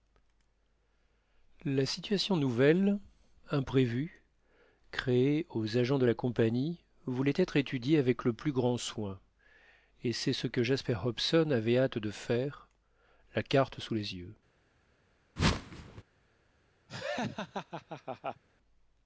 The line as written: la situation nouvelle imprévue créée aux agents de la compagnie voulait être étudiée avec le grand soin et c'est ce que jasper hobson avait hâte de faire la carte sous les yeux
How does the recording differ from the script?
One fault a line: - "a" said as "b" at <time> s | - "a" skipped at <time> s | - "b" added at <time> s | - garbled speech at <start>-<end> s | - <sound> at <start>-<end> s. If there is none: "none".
- "plus" added at 8.3 s
- whoosh at 15.4-16.0 s
- laugh at 16.9-18.4 s